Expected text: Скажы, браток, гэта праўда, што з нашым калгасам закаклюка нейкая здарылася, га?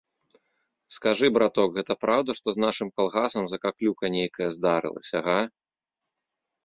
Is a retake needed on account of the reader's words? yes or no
no